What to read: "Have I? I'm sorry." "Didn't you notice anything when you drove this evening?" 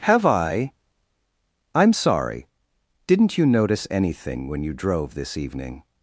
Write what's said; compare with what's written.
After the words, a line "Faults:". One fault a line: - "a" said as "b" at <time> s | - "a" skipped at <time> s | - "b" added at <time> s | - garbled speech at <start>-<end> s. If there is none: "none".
"Have I? I'm sorry." "Didn't you notice anything when you drove this evening?"
Faults:
none